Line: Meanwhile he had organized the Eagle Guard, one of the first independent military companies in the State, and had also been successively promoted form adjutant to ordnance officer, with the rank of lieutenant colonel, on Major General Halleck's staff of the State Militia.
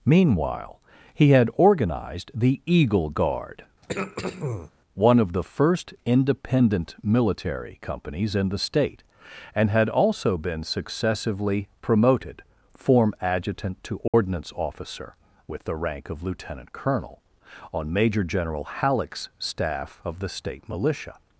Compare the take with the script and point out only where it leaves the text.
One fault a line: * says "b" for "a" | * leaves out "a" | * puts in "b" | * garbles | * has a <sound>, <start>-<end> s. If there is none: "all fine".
* has a throat clearing, 3.8-4.7 s
* has a dropout, 14.1-14.1 s